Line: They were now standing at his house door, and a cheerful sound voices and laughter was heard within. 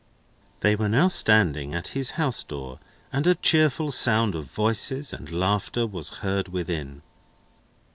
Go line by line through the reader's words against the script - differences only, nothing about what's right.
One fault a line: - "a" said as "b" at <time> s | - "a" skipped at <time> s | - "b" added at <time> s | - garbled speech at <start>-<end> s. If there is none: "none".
- "of" added at 4.3 s